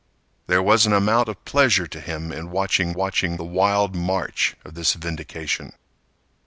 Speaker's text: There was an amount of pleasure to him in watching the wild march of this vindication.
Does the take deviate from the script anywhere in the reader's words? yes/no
yes